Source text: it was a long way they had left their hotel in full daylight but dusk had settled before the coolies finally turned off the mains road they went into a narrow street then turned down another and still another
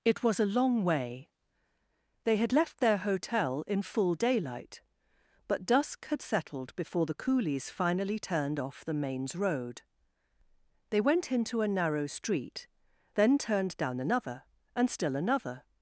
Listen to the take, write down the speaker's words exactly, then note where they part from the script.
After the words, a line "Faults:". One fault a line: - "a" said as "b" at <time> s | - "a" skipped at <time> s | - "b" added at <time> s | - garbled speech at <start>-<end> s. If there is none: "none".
it was a long way they had left their hotel in full daylight but dusk had settled before the coolies finally turned off the mains road they went into a narrow street then turned down another and still another
Faults:
none